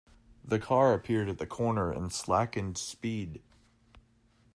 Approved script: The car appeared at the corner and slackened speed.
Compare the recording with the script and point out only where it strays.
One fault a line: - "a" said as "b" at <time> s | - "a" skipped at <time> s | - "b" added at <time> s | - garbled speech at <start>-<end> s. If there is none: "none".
none